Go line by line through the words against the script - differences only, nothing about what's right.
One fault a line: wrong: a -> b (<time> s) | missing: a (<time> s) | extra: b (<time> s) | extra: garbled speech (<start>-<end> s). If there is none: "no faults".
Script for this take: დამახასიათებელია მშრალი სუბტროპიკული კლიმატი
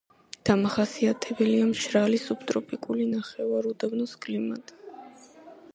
extra: ნახევარუდაბნოს (3.1 s)